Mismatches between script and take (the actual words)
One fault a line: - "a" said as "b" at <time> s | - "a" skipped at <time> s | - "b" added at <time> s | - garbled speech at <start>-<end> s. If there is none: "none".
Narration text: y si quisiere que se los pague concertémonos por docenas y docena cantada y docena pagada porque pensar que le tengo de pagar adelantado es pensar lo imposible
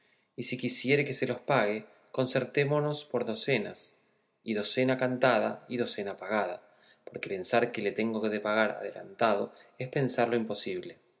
none